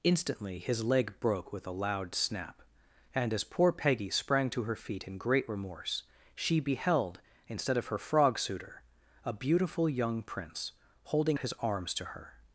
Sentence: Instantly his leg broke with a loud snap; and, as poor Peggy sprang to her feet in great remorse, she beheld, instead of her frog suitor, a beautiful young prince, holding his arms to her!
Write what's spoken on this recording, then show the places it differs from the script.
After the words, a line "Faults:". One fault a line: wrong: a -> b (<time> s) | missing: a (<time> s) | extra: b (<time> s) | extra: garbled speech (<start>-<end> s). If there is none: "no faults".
Instantly his leg broke with a loud snap; and, as poor Peggy sprang to her feet in great remorse, she beheld, instead of her frog suitor, a beautiful young prince, holding his arms to her!
Faults:
no faults